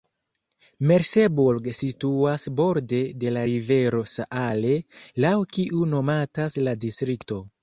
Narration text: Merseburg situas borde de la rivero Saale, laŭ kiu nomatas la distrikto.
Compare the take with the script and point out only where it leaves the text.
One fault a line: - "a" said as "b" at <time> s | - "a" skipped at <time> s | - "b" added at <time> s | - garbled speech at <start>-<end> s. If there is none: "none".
none